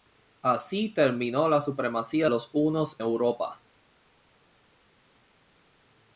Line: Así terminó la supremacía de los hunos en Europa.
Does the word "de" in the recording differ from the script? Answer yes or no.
yes